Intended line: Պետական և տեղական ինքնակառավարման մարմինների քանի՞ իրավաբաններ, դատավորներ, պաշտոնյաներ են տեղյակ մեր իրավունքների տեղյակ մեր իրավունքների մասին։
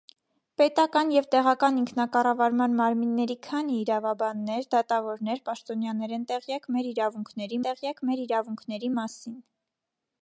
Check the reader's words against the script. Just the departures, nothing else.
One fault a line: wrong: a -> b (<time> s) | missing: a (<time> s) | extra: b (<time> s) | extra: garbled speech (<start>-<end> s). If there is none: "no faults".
no faults